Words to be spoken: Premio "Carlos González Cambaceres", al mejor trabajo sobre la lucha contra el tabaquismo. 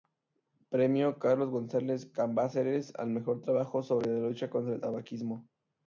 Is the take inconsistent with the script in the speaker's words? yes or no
no